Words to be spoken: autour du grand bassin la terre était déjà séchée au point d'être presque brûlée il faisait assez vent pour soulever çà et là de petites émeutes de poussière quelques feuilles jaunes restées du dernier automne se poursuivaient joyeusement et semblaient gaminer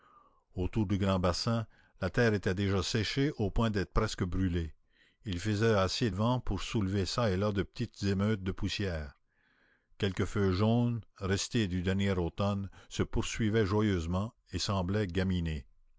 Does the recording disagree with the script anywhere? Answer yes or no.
no